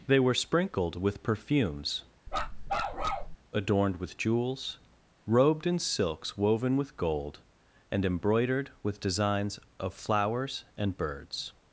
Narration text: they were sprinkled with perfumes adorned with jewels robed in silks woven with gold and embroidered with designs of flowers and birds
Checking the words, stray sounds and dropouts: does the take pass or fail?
fail